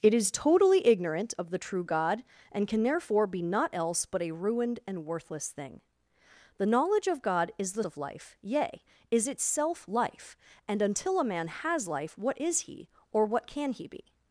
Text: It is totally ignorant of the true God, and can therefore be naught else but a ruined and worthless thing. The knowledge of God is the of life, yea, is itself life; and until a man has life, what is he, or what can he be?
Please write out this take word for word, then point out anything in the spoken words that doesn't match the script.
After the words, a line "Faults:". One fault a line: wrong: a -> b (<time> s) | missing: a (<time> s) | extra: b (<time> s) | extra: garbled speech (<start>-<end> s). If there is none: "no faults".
It is totally ignorant of the true God, and can therefore be naught else but a ruined and worthless thing. The knowledge of God is the of life, yea, is itself life; and until a man has life, what is he, or what can he be?
Faults:
no faults